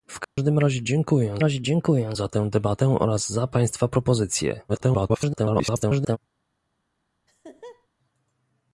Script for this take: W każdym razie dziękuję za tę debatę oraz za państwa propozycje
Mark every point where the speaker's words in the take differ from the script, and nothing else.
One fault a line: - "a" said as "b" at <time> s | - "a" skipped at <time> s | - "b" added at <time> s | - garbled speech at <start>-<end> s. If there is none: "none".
- "razie dziękuję" added at 1.4 s
- garbled speech at 4.7-6.2 s